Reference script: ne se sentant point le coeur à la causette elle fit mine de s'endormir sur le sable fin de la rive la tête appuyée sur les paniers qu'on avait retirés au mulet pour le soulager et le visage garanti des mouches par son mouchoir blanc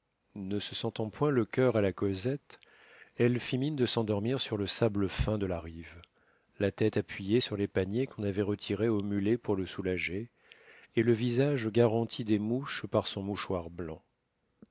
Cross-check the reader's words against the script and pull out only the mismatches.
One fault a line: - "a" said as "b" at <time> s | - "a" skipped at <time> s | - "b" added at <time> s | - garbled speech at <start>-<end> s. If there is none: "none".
none